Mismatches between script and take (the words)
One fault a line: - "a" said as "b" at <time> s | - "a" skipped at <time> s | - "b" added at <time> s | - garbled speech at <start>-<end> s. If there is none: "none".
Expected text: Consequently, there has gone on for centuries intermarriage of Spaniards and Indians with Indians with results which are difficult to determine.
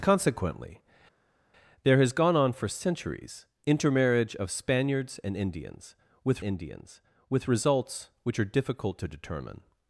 none